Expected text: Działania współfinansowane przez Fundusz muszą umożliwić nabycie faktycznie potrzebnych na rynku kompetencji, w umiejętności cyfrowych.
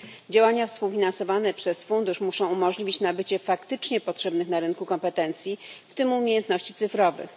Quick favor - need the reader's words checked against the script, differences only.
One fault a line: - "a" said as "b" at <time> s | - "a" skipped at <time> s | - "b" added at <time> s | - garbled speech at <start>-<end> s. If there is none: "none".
- "tym" added at 5.9 s